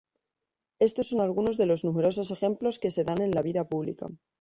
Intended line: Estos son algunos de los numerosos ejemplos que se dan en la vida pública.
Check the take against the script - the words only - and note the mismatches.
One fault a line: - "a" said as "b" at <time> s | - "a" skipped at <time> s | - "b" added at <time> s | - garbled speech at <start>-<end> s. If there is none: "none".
none